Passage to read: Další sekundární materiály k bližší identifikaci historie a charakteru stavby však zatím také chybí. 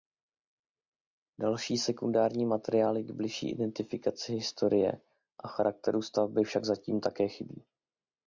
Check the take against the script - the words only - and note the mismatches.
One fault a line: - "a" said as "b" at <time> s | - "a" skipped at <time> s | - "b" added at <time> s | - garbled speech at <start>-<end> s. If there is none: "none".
none